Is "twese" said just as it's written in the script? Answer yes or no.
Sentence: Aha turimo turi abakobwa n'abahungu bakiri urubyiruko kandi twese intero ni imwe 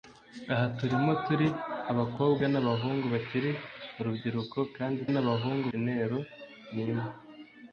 no